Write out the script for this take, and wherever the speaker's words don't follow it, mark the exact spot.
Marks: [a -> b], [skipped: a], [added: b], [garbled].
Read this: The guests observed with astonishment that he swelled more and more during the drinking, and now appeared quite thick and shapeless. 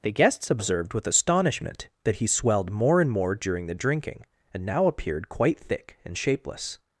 The guests observed with astonishment that he swelled more and more during the drinking, and now appeared quite thick and shapeless.